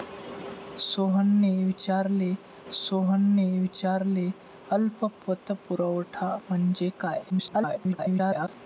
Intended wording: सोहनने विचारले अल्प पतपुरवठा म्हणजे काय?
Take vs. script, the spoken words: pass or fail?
fail